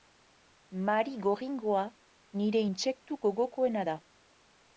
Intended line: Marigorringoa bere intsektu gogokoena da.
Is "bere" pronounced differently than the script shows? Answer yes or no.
yes